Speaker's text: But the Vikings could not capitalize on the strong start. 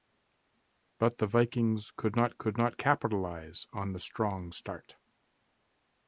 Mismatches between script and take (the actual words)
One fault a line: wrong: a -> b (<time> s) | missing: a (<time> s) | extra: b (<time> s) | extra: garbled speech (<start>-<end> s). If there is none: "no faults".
extra: could not (2.4 s)